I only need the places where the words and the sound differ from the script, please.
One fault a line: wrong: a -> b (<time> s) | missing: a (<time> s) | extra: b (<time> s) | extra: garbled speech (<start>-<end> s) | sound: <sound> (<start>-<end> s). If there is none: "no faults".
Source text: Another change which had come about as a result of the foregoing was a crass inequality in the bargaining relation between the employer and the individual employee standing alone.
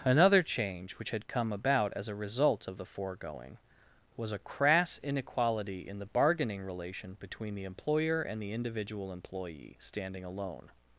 no faults